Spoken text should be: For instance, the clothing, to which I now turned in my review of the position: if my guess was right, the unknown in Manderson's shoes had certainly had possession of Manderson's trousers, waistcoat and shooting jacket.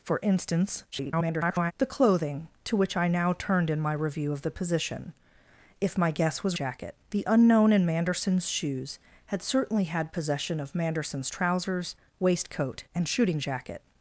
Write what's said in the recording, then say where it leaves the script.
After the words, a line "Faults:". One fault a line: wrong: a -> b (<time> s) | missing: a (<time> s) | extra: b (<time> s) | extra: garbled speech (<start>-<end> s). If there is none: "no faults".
For instance, [garbled] the clothing, to which I now turned in my review of the position: if my guess was jacket, the unknown in Manderson's shoes had certainly had possession of Manderson's trousers, waistcoat and shooting jacket.
Faults:
extra: garbled speech (0.9-1.7 s)
wrong: right -> jacket (6.5 s)